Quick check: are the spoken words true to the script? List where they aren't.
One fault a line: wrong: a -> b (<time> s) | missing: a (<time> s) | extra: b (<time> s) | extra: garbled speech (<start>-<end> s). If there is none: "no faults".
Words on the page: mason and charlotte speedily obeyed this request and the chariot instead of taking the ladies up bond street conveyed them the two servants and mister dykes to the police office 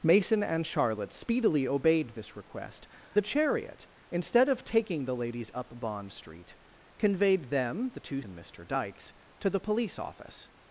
missing: and (2.9 s)
missing: servants (8.2 s)